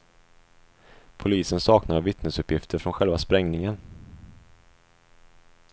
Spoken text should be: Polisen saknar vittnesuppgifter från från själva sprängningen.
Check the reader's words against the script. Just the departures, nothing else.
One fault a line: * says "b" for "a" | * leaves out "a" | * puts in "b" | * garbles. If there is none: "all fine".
* leaves out "från"